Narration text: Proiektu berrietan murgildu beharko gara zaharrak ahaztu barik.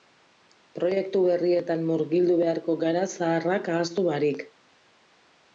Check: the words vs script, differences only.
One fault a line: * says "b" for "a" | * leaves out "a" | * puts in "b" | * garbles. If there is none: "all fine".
all fine